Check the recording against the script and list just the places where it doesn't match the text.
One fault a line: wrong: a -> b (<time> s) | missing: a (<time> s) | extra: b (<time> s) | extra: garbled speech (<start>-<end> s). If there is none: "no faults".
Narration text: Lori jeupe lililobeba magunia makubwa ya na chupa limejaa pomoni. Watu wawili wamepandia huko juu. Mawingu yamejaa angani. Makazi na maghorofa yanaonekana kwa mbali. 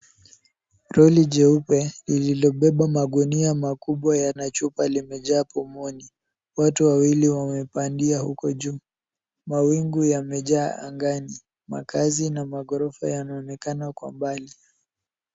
no faults